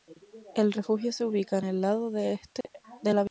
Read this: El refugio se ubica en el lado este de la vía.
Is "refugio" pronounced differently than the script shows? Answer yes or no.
no